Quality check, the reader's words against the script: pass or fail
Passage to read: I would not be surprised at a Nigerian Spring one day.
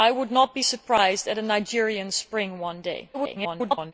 fail